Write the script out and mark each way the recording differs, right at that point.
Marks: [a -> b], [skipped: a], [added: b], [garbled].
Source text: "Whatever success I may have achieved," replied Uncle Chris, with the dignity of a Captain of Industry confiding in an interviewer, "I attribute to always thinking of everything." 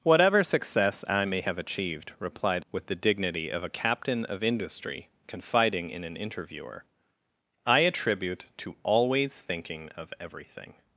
"Whatever success I may have achieved," replied [skipped: Uncle Chris,] with the dignity of a Captain of Industry confiding in an interviewer, "I attribute to always thinking of everything."